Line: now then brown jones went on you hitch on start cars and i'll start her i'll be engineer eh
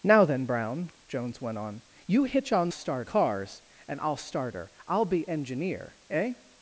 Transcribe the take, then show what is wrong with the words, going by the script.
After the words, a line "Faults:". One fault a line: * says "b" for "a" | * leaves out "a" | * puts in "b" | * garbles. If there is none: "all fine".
now then brown jones went on you hitch on start cars and i'll start her i'll be engineer eh
Faults:
all fine